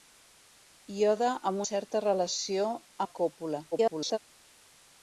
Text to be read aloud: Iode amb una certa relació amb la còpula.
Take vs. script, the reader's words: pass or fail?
fail